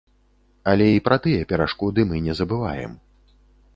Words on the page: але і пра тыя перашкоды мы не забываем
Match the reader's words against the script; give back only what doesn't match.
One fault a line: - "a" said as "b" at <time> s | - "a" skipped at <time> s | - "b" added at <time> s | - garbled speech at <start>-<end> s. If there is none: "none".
none